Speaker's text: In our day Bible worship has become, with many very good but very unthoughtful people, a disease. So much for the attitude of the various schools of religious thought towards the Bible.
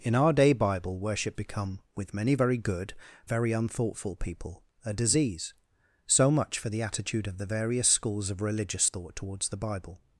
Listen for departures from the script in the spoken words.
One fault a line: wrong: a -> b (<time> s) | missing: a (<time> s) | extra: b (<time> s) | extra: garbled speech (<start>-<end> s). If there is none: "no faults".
missing: has (1.4 s)
missing: but (2.9 s)